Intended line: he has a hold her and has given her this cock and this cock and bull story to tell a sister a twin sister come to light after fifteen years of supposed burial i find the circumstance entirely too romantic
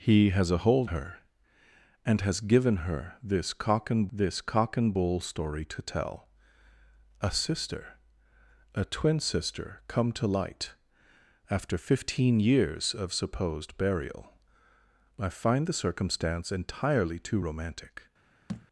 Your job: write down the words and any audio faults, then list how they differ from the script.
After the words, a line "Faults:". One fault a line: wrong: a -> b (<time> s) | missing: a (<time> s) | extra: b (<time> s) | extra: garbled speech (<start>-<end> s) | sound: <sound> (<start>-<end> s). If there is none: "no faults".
he has a hold her and has given her this cock and this cock and bull story to tell a sister a twin sister come to light after fifteen years of supposed burial i find the circumstance entirely too romantic
Faults:
sound: thud (18.5-18.7 s)